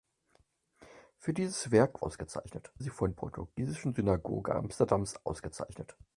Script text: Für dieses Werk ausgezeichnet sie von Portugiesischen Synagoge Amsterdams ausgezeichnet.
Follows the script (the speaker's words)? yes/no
yes